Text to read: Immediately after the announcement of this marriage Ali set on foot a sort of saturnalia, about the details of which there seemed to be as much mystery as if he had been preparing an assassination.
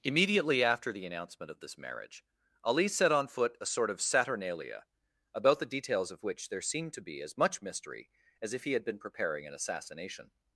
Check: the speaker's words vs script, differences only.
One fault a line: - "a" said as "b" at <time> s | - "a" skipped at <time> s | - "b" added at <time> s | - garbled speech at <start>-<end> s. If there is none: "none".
none